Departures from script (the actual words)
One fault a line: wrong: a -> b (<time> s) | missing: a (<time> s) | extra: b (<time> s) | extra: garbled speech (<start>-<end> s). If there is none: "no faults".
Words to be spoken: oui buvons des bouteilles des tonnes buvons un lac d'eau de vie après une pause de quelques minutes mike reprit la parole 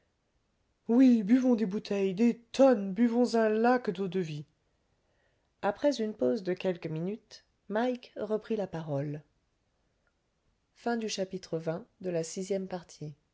no faults